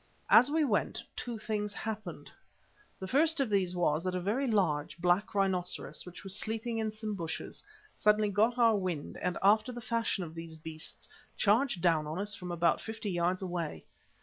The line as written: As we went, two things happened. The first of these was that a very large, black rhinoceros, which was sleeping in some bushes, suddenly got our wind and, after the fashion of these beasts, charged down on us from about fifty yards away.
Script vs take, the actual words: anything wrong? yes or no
no